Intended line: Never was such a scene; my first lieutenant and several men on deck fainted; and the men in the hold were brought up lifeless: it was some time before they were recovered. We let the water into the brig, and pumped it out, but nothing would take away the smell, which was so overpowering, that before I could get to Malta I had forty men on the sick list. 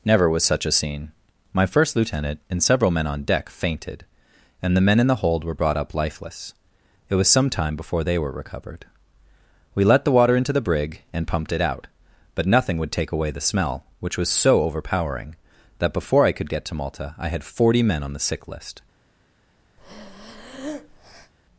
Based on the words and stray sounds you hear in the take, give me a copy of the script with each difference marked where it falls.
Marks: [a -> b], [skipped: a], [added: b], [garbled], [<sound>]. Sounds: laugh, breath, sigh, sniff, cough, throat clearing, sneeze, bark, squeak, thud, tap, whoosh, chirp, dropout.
Never was such a scene; my first lieutenant and several men on deck fainted; and the men in the hold were brought up lifeless: it was some time before they were recovered. We let the water into the brig, and pumped it out, but nothing would take away the smell, which was so overpowering, that before I could get to Malta I had forty men on the sick list. [breath]